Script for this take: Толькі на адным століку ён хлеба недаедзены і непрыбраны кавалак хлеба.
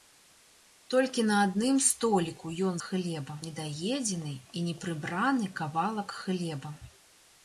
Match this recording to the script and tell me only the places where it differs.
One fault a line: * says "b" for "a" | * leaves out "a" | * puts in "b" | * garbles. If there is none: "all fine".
all fine